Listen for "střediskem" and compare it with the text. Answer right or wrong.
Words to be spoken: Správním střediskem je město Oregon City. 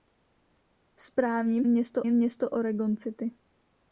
wrong